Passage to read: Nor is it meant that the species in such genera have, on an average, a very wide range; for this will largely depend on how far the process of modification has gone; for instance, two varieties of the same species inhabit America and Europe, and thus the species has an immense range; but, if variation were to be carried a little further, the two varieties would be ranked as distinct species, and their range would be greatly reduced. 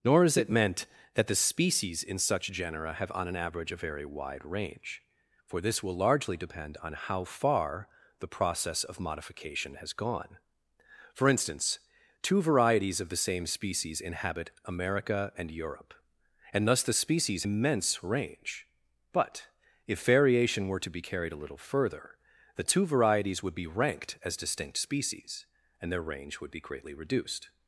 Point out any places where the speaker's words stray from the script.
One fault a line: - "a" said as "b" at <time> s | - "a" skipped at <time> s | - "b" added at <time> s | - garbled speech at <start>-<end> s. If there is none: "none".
- "has an" skipped at 17.4 s